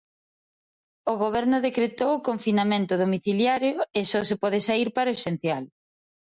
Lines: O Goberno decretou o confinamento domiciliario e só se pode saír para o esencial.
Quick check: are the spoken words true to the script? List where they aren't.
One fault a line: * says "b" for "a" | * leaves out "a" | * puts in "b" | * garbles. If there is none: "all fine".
all fine